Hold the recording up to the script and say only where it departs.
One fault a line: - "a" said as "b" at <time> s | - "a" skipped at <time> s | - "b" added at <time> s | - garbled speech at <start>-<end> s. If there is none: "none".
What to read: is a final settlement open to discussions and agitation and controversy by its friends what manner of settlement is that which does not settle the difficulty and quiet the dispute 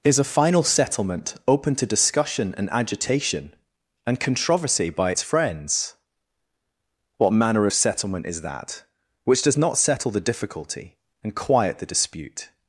- "discussions" said as "discussion" at 1.9 s